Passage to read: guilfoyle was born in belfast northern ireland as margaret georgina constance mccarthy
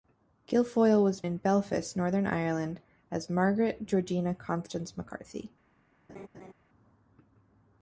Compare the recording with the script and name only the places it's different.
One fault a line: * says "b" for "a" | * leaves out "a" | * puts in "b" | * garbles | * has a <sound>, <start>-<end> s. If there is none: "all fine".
* leaves out "born"
* has a laugh, 6.1-6.5 s